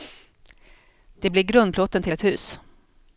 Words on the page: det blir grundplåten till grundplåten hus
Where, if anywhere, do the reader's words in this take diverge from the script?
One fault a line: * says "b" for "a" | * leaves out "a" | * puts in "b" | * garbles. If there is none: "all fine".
* says "ett" for "grundplåten"